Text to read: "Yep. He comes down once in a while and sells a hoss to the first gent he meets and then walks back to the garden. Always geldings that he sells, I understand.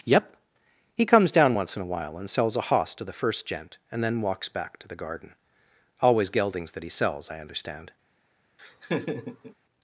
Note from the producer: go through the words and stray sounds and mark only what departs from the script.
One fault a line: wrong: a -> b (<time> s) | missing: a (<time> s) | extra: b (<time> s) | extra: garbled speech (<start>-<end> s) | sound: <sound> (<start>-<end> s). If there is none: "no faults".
missing: he meets (3.8 s)
sound: laugh (8.6-9.5 s)